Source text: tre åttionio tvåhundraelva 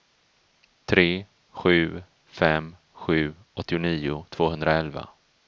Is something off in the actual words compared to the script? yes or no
yes